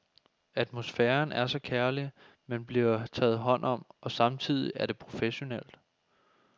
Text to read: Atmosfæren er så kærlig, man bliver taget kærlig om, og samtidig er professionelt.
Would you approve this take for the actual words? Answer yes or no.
no